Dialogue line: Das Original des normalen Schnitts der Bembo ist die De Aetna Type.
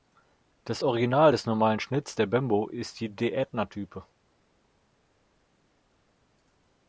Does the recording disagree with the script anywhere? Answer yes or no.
no